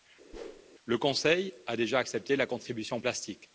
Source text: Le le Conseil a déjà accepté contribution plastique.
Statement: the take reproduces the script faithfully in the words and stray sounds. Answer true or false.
false